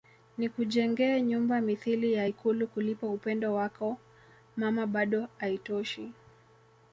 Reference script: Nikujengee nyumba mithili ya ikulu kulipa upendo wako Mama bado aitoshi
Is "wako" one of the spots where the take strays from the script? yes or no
no